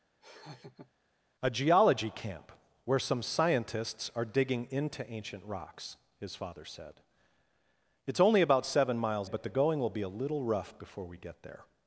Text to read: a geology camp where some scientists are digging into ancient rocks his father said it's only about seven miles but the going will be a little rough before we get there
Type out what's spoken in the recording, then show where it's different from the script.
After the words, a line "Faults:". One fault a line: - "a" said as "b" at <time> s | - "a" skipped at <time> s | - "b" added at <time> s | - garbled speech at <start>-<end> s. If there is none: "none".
a geology camp where some scientists are digging into ancient rocks his father said it's only about seven miles but the going will be a little rough before we get there
Faults:
none